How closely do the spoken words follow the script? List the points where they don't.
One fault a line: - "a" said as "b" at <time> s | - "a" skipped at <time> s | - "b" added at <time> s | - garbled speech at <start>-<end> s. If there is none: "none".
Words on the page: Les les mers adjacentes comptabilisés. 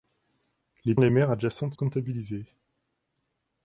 none